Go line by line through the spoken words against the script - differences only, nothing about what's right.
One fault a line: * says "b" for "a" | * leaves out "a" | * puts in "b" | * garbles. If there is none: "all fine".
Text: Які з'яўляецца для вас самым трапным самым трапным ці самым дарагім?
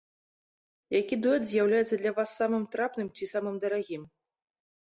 * puts in "дуэт"
* leaves out "самым трапным"